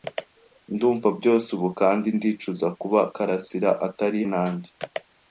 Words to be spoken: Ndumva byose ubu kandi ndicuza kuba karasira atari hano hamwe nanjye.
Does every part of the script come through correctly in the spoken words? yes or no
no